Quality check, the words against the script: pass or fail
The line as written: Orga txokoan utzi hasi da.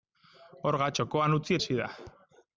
pass